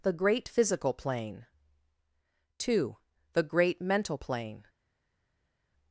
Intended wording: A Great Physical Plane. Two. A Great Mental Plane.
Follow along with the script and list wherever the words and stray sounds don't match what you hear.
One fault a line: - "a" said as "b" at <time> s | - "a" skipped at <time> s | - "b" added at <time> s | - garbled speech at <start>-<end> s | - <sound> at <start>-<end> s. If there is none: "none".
- "A" said as "The" at 0.0 s
- "A" said as "The" at 3.3 s